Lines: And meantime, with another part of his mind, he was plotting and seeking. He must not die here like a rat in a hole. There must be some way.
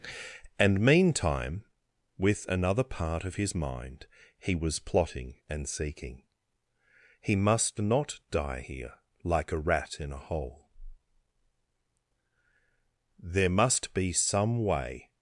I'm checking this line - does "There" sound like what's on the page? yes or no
yes